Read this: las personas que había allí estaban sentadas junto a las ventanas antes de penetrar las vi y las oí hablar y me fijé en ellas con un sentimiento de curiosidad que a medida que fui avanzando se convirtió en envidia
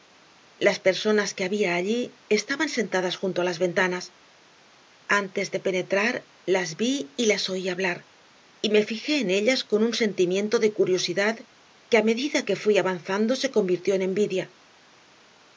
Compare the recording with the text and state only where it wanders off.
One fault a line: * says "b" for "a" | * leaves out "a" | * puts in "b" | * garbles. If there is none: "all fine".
all fine